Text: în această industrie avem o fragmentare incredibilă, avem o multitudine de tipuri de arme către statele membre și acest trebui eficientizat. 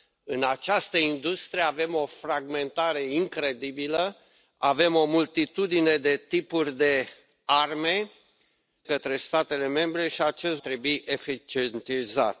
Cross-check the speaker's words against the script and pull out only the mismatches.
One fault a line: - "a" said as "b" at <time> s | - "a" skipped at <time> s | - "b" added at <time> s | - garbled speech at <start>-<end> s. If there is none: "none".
none